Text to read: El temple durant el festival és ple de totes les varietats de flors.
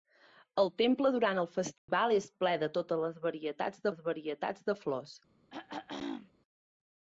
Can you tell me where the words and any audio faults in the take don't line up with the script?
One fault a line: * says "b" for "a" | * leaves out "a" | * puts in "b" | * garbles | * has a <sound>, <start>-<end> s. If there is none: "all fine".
* has a dropout, 1.8-1.9 s
* puts in "les varietats"
* has a throat clearing, 5.5-6.3 s